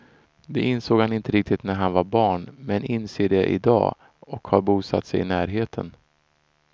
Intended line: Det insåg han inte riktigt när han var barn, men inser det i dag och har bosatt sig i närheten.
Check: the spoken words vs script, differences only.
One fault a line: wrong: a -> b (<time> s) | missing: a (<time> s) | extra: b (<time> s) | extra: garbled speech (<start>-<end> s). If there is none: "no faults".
no faults